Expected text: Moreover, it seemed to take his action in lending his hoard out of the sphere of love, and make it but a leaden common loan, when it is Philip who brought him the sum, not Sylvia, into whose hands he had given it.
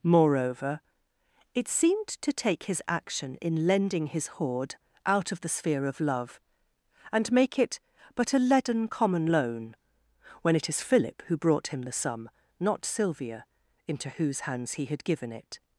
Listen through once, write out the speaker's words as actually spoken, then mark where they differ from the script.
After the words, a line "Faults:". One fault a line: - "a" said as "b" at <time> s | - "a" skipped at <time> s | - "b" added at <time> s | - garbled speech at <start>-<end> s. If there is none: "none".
Moreover, it seemed to take his action in lending his hoard out of the sphere of love, and make it but a leaden common loan, when it is Philip who brought him the sum, not Sylvia, into whose hands he had given it.
Faults:
none